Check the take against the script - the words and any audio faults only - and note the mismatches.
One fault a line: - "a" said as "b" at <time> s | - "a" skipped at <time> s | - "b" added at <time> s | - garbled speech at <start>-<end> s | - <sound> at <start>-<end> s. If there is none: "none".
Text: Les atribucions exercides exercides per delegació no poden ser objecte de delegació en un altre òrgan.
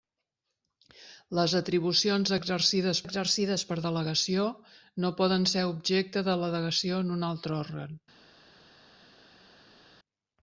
none